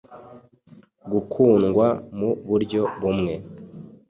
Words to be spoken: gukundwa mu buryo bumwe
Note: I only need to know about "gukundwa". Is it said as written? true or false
true